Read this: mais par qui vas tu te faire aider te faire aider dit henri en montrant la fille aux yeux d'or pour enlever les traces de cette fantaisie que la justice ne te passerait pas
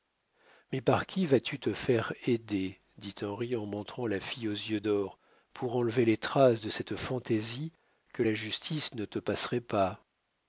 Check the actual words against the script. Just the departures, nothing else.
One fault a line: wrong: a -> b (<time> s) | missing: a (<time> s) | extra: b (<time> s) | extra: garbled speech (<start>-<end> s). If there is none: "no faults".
missing: te faire aider (2.8 s)